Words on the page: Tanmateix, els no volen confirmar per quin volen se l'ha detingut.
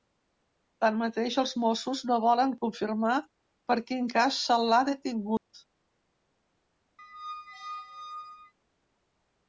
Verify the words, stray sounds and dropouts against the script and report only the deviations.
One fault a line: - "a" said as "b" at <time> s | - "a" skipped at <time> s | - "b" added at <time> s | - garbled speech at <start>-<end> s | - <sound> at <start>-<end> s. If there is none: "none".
- "mossos" added at 1.6 s
- "volen" said as "cas" at 4.2 s
- dropout at 5.4-5.5 s
- squeak at 7.0-8.5 s